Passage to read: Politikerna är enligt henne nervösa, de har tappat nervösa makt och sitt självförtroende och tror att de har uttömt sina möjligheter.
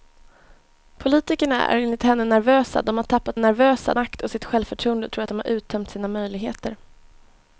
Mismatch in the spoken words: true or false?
false